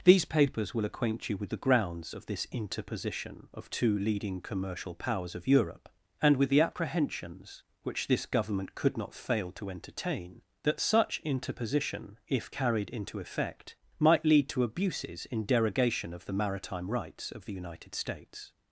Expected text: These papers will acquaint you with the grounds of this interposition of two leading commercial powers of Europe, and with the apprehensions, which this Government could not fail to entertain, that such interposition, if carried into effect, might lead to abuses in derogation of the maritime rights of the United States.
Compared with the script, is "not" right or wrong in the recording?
right